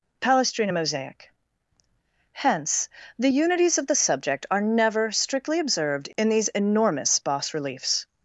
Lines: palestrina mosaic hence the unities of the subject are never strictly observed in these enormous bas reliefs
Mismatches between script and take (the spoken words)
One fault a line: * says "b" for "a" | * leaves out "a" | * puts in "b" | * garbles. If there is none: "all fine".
all fine